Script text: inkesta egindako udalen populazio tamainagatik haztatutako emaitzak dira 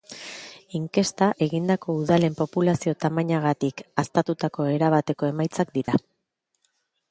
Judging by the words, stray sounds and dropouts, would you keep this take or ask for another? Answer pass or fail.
fail